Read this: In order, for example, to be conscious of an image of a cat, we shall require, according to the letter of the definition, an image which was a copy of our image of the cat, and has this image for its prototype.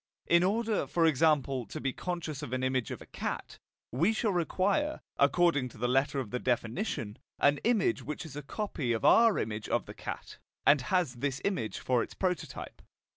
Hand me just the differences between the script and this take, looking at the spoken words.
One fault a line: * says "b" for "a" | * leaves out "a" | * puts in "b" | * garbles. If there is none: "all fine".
* says "is" for "was"